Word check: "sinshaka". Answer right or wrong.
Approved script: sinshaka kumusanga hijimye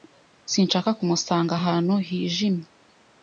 right